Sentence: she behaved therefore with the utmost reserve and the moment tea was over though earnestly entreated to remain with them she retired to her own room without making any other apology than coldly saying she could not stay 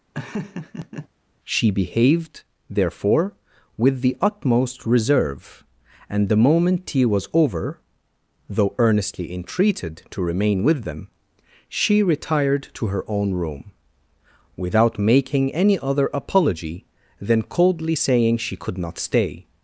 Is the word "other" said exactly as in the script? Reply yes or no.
yes